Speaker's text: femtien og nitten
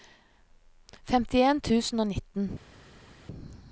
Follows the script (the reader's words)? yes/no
no